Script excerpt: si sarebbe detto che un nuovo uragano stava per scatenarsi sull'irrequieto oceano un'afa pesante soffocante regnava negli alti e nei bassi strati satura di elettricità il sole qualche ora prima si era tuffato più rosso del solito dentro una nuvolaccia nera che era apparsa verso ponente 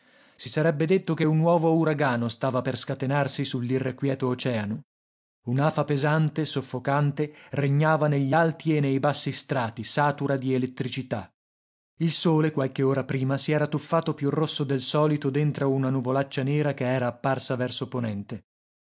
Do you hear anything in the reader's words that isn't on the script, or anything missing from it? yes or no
no